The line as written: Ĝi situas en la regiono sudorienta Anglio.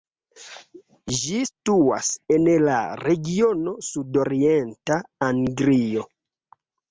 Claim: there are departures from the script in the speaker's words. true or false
false